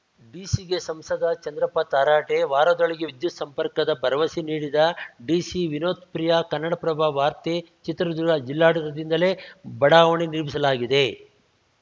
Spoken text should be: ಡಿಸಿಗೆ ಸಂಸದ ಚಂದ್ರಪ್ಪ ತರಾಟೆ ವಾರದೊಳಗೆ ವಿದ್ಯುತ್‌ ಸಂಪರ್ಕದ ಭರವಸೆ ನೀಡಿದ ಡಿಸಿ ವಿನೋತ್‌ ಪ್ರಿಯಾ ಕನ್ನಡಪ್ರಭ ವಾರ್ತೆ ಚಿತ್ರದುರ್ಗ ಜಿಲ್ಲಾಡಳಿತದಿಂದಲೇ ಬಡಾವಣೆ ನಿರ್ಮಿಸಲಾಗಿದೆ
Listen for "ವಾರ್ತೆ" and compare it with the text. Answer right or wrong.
right